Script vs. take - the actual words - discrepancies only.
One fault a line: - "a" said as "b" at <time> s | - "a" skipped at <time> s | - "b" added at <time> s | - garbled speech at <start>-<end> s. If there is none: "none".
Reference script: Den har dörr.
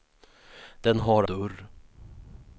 none